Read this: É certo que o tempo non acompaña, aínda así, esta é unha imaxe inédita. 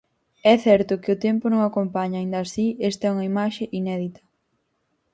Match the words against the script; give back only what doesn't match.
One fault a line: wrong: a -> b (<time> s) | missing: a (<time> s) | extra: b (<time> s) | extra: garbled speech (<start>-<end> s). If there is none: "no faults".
no faults